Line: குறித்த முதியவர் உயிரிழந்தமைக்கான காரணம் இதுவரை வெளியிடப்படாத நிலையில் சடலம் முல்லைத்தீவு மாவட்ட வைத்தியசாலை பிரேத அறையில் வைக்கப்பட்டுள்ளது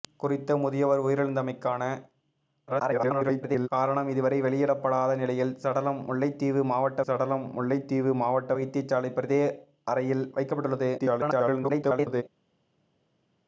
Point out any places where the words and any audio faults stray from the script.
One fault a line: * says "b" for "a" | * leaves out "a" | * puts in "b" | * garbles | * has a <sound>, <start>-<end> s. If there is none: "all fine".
* garbles
* puts in "சடலம் முல்லைத்தீவு மாவட்ட"
* garbles